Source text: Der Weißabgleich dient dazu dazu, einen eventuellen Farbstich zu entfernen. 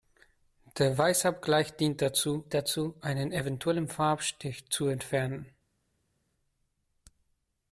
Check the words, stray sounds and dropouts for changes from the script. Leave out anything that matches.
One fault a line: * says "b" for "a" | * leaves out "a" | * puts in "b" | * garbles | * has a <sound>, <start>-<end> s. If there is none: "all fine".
all fine